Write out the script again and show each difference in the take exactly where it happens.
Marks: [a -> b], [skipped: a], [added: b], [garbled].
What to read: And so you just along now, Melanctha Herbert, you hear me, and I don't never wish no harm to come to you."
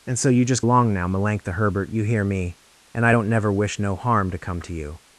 And so you just along now, Melanctha Herbert, you hear me, and I don't never wish no harm to come to you."